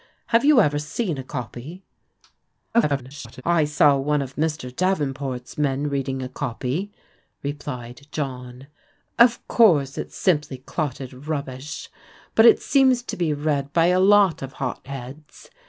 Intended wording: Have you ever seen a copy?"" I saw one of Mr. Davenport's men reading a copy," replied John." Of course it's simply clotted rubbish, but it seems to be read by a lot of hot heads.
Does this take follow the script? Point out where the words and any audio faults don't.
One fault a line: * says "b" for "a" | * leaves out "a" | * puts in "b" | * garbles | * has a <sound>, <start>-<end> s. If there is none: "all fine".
* garbles